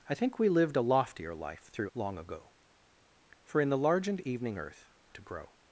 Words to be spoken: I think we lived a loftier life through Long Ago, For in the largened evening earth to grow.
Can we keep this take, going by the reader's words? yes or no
yes